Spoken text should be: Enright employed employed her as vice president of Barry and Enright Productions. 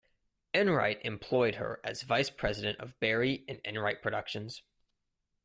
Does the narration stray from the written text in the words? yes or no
yes